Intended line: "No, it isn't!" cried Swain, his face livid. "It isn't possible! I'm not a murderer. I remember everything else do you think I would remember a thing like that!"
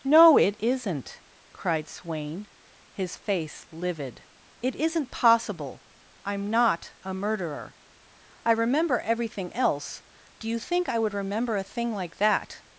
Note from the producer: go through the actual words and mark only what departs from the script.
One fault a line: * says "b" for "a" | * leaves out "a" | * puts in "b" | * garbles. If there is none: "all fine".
all fine